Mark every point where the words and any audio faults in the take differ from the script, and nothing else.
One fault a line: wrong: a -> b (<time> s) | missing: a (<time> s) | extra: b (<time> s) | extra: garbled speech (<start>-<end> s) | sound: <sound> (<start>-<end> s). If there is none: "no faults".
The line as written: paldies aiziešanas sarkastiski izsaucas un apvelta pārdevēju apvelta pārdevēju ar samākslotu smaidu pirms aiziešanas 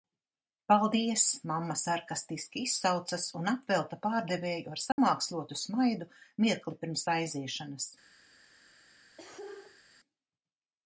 wrong: aiziešanas -> mamma (1.5 s)
missing: apvelta pārdevēju (4.7 s)
sound: dropout (4.9-5.0 s)
extra: mirkli (6.5 s)
sound: cough (9.2-9.8 s)